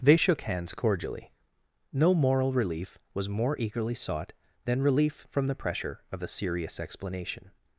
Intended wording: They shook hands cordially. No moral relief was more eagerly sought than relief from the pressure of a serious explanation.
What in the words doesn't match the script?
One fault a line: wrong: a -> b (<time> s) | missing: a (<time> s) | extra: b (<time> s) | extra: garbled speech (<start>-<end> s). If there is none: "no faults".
no faults